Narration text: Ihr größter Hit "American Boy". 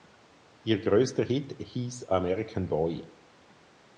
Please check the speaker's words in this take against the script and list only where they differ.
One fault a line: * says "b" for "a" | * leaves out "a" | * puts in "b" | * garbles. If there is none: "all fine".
* puts in "hieß"